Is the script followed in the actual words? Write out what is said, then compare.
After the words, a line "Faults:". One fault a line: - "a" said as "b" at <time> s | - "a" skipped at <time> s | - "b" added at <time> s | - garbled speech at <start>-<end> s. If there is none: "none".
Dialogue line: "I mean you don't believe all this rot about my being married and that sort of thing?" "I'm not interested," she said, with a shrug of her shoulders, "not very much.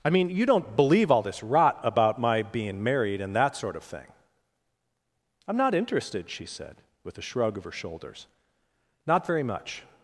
"I mean you don't believe all this rot about my being married and that sort of thing?" "I'm not interested," she said, with a shrug of her shoulders, "not very much.
Faults:
none